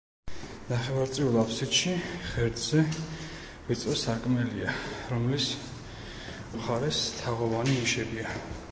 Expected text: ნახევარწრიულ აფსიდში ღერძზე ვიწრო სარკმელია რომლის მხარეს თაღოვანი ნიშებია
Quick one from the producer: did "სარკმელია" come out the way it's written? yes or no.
yes